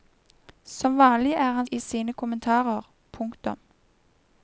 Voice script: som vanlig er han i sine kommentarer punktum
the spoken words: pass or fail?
pass